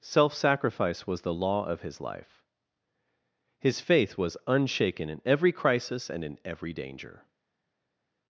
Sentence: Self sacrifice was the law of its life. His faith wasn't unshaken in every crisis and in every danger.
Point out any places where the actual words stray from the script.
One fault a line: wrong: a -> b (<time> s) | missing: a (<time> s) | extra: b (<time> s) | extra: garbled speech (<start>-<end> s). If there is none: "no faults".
wrong: its -> his (1.8 s)
wrong: wasn't -> was (4.1 s)